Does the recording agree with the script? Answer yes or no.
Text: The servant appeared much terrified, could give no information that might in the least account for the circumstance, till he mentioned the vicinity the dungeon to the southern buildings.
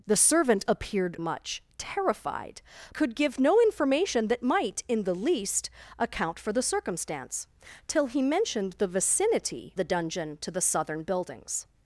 yes